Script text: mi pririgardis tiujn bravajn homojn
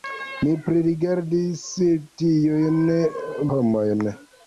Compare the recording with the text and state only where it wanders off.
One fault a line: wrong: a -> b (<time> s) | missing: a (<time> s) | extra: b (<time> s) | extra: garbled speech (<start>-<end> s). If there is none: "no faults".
missing: bravajn (2.8 s)